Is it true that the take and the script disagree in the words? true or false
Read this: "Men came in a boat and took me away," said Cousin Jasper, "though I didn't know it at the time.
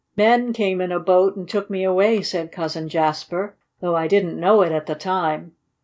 false